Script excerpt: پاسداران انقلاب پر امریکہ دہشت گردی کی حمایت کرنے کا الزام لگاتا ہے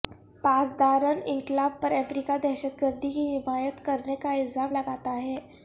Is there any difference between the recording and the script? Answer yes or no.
no